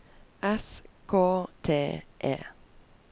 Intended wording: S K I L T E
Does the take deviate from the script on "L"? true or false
true